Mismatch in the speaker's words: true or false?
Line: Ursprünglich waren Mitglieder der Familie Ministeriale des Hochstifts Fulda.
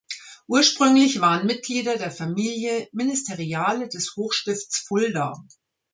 false